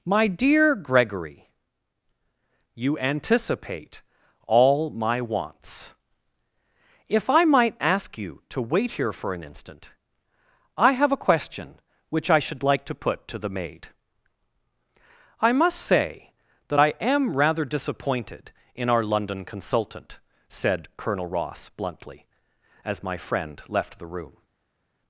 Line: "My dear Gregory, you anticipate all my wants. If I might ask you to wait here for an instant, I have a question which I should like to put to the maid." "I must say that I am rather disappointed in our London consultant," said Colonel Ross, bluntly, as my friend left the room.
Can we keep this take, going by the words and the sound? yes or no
yes